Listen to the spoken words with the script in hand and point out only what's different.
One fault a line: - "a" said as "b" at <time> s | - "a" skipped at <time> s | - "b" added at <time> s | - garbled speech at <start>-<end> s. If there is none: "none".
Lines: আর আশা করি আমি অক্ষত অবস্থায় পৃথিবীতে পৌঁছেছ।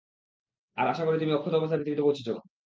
- "আমি" said as "তুমি" at 1.2 s